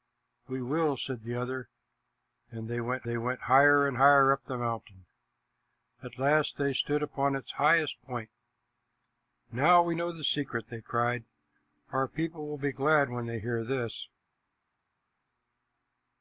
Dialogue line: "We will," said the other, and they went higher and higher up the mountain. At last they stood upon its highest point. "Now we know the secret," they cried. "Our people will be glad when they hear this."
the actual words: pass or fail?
fail